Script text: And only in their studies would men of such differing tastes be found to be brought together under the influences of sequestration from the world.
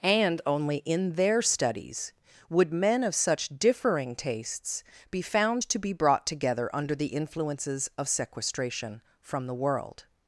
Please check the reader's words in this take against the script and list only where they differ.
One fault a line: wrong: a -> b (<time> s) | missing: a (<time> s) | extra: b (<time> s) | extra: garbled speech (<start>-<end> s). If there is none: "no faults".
no faults